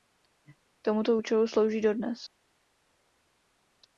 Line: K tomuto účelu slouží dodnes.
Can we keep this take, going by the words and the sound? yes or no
yes